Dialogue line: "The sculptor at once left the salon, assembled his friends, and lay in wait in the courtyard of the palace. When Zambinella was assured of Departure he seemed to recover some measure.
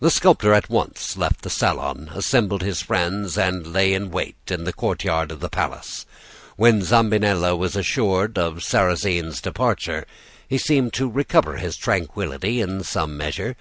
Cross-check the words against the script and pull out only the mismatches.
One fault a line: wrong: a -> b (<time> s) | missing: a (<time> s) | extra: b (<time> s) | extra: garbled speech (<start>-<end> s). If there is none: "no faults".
extra: Sarrasine's (8.6 s)
extra: his tranquillity in (11.6 s)